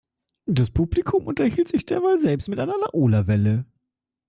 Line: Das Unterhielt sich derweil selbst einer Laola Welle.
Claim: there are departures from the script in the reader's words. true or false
true